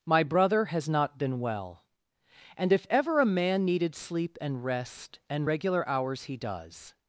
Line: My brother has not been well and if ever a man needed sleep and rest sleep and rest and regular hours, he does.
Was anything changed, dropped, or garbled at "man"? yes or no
no